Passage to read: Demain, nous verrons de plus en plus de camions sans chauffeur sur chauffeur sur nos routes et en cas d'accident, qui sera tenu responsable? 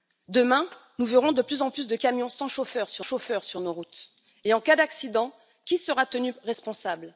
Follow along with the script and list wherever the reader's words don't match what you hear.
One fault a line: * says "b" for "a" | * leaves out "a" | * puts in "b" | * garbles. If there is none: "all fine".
all fine